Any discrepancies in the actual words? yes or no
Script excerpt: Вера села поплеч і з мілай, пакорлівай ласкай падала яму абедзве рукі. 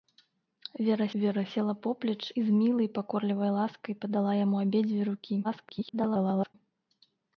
yes